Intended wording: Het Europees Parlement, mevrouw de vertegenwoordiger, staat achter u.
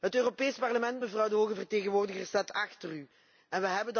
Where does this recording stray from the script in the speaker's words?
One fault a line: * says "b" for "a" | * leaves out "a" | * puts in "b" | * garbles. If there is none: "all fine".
* puts in "hoge"